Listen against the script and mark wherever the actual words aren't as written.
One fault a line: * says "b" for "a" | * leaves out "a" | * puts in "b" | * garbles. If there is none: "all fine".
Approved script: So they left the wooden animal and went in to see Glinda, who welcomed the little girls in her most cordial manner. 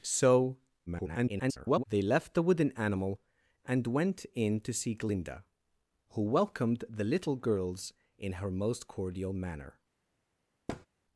* garbles